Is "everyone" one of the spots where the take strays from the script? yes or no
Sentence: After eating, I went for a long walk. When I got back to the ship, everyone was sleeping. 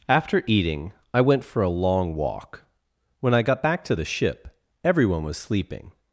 no